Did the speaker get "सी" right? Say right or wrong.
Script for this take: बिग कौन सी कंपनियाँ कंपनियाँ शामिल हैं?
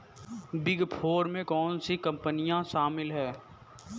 right